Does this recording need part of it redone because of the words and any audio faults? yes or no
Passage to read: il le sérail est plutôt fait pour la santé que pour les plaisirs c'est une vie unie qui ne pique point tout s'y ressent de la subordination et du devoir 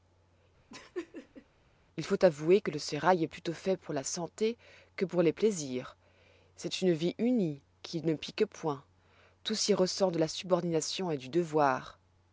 yes